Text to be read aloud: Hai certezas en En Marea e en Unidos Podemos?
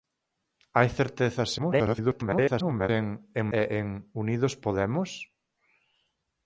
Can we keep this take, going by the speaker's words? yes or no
no